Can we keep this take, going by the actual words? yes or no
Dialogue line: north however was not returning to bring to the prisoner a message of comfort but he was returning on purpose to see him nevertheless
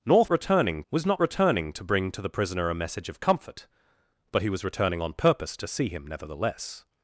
no